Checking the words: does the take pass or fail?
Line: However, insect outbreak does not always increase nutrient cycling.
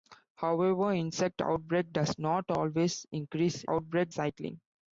fail